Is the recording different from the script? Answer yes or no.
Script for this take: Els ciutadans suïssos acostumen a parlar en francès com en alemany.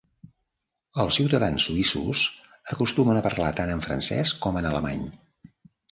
yes